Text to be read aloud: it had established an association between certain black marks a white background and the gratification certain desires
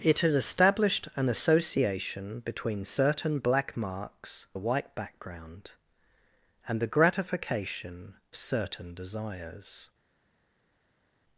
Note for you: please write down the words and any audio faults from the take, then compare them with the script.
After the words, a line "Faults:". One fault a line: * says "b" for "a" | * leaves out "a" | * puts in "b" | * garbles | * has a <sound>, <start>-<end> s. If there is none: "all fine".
it had established an association between certain black marks a white background and the gratification certain desires
Faults:
all fine